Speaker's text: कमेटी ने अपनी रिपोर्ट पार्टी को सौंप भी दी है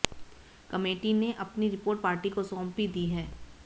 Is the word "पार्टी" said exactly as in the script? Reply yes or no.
yes